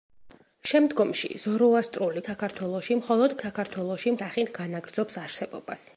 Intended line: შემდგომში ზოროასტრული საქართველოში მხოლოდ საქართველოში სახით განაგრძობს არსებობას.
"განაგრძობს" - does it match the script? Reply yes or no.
yes